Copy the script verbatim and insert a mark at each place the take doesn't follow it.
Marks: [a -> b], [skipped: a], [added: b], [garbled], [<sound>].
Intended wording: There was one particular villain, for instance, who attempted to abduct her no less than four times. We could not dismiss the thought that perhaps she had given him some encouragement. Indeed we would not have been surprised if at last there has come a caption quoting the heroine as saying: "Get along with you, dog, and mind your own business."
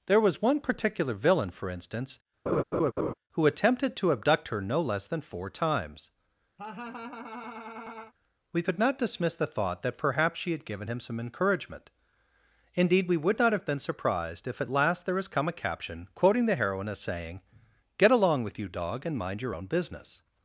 There was one particular villain, for instance, [laugh] who attempted to abduct her no less than four times. [laugh] We could not dismiss the thought that perhaps she had given him some encouragement. Indeed we would not have been surprised if at last there has come a caption quoting the heroine as saying: "Get along with you, dog, and mind your own business."